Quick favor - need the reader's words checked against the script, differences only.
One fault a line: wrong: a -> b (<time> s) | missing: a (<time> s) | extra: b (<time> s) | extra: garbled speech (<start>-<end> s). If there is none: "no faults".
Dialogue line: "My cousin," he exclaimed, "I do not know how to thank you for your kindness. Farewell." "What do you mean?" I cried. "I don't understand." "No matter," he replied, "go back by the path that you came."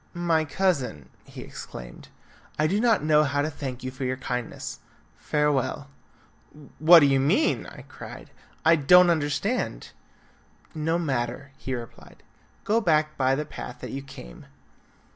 no faults